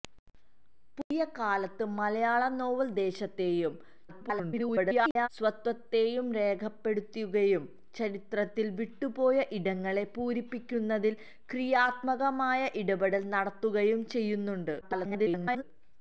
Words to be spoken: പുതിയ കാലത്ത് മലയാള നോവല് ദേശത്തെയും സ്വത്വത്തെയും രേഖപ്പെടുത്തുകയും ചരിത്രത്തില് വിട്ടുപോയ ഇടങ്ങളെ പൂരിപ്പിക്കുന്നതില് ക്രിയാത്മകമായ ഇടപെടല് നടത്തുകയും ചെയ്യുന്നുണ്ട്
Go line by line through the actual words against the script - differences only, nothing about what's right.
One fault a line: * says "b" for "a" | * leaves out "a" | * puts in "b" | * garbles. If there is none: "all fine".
* garbles
* garbles